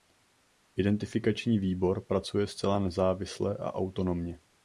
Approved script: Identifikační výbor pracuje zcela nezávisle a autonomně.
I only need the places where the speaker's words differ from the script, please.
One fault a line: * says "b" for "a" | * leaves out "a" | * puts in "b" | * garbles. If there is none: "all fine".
all fine